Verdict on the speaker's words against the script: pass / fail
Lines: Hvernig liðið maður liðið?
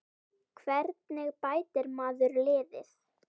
fail